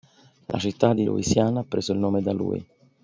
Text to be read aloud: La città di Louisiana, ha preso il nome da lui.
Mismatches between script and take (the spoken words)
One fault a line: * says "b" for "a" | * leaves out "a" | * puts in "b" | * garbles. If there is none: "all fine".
all fine